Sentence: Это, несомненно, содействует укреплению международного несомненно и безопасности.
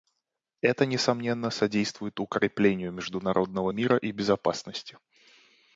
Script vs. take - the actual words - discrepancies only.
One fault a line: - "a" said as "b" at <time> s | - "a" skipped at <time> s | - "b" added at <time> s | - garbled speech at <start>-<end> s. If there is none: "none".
- "несомненно" said as "мира" at 3.7 s